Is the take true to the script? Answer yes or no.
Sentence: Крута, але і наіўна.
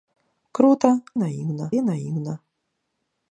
no